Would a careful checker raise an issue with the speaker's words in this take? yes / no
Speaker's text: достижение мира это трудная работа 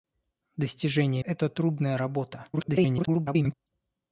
yes